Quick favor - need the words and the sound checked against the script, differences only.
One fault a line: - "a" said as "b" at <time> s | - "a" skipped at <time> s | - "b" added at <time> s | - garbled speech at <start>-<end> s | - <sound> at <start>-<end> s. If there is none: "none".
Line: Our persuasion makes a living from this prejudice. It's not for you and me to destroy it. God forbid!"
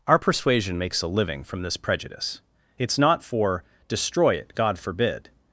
- "you and me to" skipped at 3.6 s